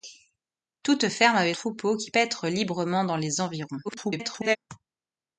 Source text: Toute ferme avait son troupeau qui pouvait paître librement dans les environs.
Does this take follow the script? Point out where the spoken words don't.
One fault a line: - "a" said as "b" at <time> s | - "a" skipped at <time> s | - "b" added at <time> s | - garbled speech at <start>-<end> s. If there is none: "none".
- "son" skipped at 1.5 s
- "pouvait" skipped at 2.1 s
- garbled speech at 3.8-4.6 s